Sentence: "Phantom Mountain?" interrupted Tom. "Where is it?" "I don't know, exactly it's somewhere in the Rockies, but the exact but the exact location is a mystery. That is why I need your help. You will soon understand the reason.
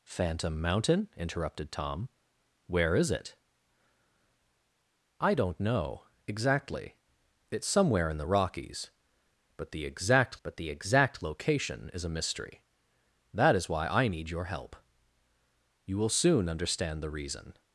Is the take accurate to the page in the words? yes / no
yes